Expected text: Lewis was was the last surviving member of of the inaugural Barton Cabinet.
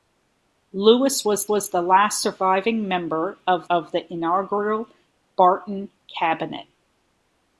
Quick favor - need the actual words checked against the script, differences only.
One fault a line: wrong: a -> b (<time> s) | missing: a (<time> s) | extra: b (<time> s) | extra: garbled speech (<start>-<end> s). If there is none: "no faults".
no faults